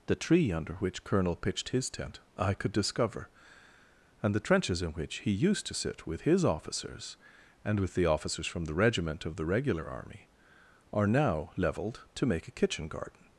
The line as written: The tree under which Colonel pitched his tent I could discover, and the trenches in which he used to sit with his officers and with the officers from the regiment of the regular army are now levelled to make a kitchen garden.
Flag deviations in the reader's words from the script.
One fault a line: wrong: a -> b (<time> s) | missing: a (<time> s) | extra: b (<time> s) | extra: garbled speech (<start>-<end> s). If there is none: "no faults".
no faults